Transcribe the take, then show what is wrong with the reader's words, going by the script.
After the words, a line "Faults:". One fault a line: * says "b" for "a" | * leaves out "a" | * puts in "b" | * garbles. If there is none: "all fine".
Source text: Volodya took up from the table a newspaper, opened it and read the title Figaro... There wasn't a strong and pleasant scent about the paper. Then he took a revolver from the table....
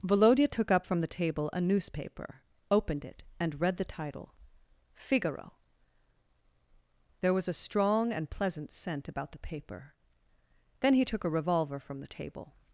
Volodya took up from the table a newspaper, opened it and read the title Figaro... There was a strong and pleasant scent about the paper. Then he took a revolver from the table....
Faults:
* says "was" for "wasn't"